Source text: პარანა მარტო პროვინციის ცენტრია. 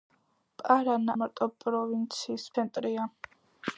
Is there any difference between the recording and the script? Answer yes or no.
no